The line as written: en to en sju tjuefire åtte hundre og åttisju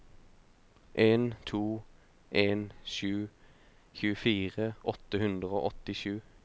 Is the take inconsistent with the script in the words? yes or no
no